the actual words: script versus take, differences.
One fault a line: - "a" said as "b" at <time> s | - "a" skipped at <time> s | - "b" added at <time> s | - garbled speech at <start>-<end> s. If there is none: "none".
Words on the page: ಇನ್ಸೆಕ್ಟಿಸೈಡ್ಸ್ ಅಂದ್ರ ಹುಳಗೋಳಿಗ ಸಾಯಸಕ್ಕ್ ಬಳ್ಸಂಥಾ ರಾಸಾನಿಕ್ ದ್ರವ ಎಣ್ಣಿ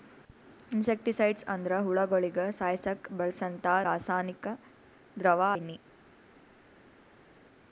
none